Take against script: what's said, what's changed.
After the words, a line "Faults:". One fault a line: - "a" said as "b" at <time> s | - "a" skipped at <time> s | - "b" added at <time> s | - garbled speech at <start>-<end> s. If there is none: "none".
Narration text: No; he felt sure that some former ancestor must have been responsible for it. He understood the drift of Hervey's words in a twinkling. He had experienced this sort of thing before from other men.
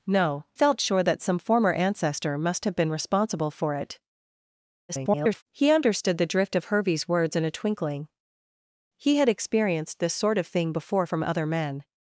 No; felt sure that some former ancestor must have been responsible for it. [garbled] He understood the drift of Hervey's words in a twinkling. He had experienced this sort of thing before from other men.
Faults:
- "he" skipped at 0.5 s
- garbled speech at 4.9-5.4 s